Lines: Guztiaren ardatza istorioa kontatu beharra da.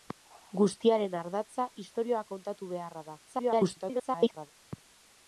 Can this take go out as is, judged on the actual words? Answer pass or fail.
fail